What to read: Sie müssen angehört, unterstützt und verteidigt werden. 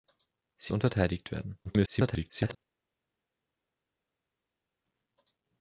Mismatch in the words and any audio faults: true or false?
true